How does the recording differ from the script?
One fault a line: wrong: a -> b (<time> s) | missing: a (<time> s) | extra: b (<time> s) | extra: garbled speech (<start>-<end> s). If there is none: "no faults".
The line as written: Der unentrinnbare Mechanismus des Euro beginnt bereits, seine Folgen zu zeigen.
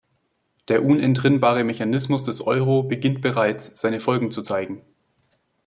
no faults